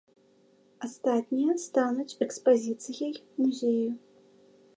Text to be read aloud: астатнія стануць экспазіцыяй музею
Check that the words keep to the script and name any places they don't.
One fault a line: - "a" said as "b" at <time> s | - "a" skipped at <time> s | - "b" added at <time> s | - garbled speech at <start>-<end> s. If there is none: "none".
none